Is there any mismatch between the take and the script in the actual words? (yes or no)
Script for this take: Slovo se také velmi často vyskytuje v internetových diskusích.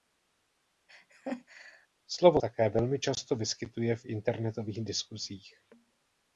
yes